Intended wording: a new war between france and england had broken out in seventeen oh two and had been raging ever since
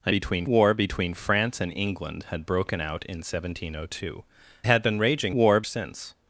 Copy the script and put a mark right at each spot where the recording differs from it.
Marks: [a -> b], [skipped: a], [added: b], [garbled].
a [new -> between] war between france and england had broken out in seventeen oh two [skipped: and] had been raging [ever -> war] since